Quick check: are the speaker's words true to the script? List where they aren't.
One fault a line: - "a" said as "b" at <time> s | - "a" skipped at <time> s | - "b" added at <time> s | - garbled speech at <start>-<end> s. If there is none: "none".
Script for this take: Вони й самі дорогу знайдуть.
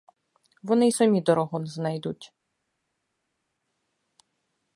none